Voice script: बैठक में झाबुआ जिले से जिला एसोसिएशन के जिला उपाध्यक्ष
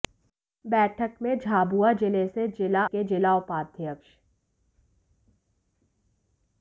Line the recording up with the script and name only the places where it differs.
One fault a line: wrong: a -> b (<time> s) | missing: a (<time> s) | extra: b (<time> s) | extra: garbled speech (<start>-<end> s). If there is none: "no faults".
missing: एसोसिएशन (2.9 s)